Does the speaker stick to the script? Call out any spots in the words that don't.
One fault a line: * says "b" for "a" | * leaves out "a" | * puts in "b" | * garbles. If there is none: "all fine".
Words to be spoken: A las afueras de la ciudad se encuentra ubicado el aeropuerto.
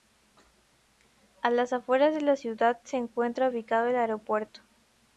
all fine